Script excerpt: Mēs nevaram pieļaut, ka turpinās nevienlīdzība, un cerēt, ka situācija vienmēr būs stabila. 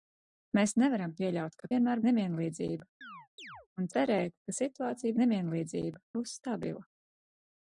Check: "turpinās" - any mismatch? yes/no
yes